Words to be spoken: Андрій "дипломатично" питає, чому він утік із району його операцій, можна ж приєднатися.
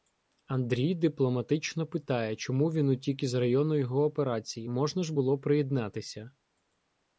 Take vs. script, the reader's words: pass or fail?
fail